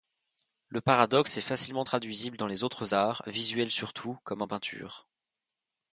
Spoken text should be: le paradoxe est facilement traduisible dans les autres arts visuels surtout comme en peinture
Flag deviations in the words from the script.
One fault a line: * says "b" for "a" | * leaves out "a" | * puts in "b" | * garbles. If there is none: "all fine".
all fine